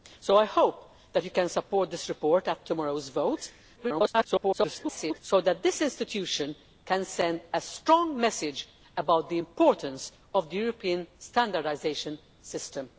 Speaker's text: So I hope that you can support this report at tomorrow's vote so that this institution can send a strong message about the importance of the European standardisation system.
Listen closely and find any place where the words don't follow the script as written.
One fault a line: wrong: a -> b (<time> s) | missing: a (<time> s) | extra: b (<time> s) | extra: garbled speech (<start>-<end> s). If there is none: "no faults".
extra: garbled speech (3.8-5.2 s)